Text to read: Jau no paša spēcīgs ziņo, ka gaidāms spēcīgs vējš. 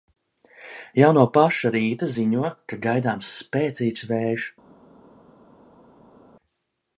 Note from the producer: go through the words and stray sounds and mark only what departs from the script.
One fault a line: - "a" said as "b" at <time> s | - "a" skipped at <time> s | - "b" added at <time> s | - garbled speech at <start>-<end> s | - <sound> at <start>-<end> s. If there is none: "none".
- "spēcīgs" said as "rīta" at 1.8 s